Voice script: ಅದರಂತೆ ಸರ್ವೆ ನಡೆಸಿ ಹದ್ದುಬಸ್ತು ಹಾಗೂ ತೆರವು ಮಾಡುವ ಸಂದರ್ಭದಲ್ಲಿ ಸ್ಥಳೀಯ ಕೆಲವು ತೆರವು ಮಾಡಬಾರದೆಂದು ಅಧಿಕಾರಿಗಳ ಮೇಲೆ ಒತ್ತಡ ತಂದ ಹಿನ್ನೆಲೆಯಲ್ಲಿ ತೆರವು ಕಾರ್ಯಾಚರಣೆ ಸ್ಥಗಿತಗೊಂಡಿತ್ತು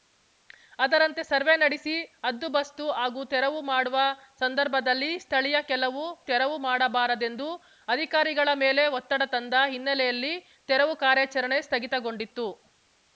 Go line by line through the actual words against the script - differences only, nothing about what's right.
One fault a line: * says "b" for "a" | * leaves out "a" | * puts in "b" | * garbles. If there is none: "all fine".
all fine